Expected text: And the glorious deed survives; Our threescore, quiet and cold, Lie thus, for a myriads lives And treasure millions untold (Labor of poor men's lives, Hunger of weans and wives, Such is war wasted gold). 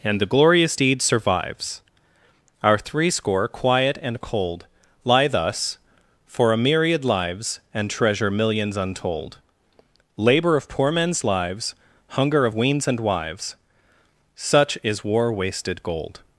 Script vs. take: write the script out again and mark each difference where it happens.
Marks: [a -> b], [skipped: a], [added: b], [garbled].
And the glorious deed survives; Our threescore, quiet and cold, Lie thus, for a [myriads -> myriad] lives And treasure millions untold (Labor of poor men's lives, Hunger of weans and wives, Such is war wasted gold).